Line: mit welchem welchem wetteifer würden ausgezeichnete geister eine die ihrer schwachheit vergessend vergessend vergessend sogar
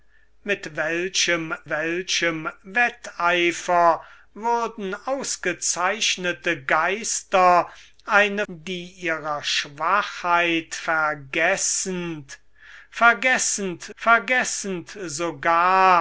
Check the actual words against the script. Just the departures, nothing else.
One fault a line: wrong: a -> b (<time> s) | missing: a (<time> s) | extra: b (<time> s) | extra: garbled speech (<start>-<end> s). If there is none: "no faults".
no faults